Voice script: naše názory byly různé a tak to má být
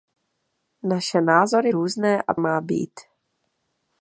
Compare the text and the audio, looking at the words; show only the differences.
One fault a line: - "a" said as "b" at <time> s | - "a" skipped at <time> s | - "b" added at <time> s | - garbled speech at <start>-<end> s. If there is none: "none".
- "byly" skipped at 1.7 s
- "tak to" skipped at 2.3 s